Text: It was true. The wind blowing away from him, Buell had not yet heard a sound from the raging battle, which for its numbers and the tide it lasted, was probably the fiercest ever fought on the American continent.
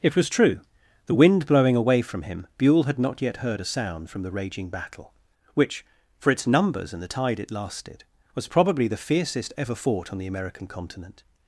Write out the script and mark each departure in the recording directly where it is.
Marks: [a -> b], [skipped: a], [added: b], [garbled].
It was true. The wind blowing away from him, Buell had not yet heard a sound from the raging battle, which for its numbers and the tide it lasted, was probably the fiercest ever fought on the American continent.